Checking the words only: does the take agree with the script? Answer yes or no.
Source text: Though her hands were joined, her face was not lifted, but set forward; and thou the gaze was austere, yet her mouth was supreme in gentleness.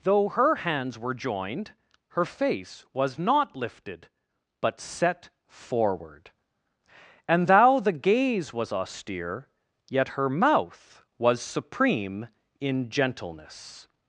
yes